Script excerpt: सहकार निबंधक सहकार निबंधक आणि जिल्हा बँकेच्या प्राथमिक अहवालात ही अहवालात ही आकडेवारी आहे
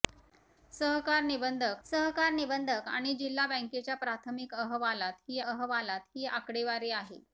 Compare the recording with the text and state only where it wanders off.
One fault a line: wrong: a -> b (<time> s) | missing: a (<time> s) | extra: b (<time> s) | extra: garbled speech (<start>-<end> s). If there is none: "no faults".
no faults